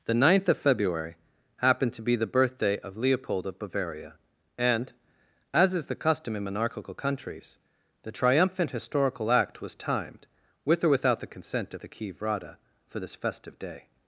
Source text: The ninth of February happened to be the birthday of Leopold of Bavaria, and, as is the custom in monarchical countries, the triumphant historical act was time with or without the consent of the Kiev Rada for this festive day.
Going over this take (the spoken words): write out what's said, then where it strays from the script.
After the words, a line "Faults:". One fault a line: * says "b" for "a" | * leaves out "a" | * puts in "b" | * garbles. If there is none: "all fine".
The ninth of February happened to be the birthday of Leopold of Bavaria, and, as is the custom in monarchical countries, the triumphant historical act was timed with or without the consent of the Kiev Rada for this festive day.
Faults:
* says "timed" for "time"